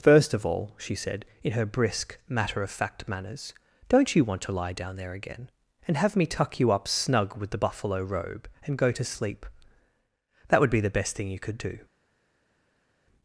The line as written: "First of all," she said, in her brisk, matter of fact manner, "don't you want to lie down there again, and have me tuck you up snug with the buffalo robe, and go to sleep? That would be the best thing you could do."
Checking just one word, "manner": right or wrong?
wrong